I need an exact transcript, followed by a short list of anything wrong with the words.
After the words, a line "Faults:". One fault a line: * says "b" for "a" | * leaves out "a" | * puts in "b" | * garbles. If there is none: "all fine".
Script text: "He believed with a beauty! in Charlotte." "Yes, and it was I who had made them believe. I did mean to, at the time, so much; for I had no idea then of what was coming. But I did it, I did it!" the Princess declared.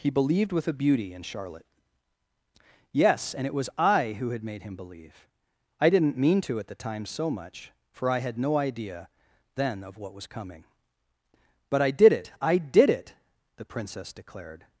"He believed with a beauty! in Charlotte." "Yes, and it was I who had made him believe. I didn't mean to, at the time, so much; for I had no idea then of what was coming. But I did it, I did it!" the Princess declared.
Faults:
* says "him" for "them"
* says "didn't" for "did"